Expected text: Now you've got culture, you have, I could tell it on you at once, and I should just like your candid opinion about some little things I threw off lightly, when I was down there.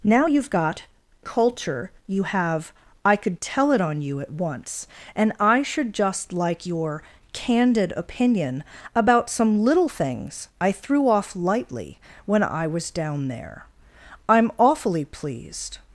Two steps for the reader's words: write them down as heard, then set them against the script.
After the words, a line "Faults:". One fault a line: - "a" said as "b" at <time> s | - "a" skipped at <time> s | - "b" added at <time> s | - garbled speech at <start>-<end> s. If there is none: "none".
Now you've got culture, you have, I could tell it on you at once, and I should just like your candid opinion about some little things I threw off lightly, when I was down there. I'm awfully pleased
Faults:
- "I'm awfully pleased" added at 14.3 s